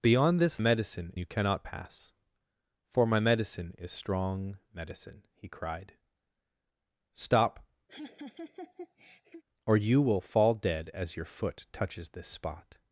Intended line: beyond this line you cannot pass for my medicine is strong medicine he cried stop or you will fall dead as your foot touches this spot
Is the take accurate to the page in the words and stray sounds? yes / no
no